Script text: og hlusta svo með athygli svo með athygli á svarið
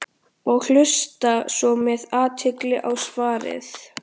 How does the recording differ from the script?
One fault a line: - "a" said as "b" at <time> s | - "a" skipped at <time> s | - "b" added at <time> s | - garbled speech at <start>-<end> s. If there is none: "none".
- "svo með athygli" skipped at 2.8 s